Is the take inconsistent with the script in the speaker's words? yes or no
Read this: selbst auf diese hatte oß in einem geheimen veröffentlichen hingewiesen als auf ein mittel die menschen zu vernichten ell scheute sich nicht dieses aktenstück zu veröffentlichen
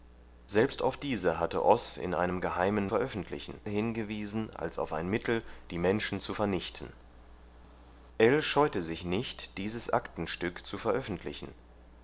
no